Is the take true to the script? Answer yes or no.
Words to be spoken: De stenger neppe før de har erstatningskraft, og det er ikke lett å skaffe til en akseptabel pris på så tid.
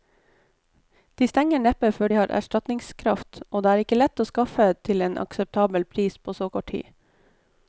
no